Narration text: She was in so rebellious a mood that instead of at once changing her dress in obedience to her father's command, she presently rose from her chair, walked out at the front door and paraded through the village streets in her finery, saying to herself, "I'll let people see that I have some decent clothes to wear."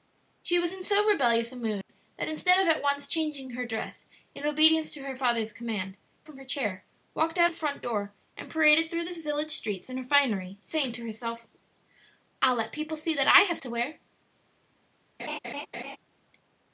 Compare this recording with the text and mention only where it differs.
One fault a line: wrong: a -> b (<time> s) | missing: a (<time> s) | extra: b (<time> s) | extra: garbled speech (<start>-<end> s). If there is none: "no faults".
missing: she presently rose (6.0 s)
missing: at (7.5 s)
missing: some decent clothes (13.6 s)